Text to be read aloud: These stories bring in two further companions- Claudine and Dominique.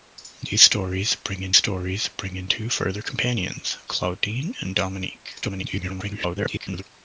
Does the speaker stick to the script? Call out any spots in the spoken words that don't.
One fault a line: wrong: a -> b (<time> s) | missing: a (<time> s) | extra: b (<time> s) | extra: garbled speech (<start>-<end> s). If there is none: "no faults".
extra: stories bring in (1.6 s)
extra: garbled speech (5.4-6.8 s)